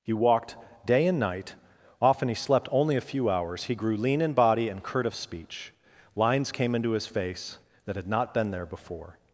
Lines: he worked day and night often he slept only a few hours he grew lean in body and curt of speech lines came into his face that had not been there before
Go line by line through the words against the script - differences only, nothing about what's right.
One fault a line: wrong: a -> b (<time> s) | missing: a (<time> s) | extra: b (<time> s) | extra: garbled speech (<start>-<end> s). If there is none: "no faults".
wrong: worked -> walked (0.1 s)